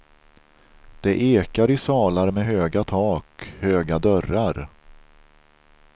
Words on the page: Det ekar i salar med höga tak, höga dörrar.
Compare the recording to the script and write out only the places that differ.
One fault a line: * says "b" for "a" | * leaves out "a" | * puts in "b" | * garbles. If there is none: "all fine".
all fine